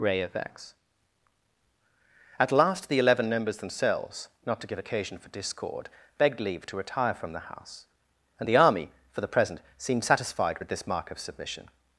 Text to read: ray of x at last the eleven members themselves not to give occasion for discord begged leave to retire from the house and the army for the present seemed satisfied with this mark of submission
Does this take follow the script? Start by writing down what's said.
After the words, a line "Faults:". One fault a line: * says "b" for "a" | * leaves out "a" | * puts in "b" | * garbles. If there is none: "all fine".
ray of x at last the eleven members themselves not to give occasion for discord begged leave to retire from the house and the army for the present seemed satisfied with this mark of submission
Faults:
all fine